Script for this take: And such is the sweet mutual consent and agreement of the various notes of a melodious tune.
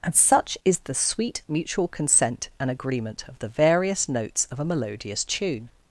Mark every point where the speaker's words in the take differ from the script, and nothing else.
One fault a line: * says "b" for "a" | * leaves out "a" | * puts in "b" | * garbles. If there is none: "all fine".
all fine